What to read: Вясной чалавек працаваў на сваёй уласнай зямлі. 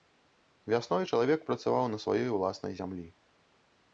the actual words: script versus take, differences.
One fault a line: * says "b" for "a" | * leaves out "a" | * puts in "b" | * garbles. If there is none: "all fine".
all fine